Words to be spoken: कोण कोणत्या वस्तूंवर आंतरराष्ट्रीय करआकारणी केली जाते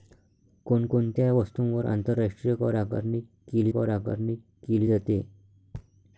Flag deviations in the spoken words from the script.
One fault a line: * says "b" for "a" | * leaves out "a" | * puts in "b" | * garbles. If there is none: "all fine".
* puts in "करआकारणी केली"